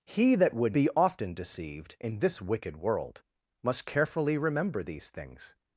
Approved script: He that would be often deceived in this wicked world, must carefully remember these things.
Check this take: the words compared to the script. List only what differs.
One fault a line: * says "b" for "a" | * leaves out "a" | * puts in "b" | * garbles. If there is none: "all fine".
all fine